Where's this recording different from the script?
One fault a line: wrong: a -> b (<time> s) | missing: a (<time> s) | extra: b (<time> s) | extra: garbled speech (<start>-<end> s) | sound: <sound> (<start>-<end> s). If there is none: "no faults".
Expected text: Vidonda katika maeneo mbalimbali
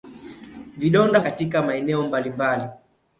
no faults